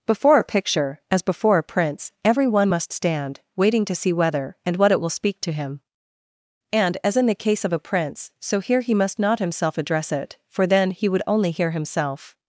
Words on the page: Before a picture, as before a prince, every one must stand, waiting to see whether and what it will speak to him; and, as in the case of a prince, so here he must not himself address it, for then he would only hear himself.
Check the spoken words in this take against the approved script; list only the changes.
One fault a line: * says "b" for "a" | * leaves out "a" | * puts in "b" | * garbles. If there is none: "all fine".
all fine